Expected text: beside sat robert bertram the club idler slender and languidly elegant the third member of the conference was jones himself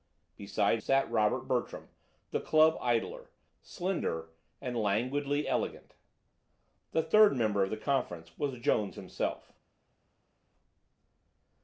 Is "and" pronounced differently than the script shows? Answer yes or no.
no